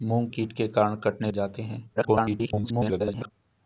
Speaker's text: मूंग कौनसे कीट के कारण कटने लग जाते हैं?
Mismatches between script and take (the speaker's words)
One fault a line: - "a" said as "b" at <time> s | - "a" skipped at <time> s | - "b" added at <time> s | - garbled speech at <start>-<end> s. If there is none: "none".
- "कौनसे" skipped at 0.3 s
- "लग" skipped at 1.3 s
- garbled speech at 2.0-3.3 s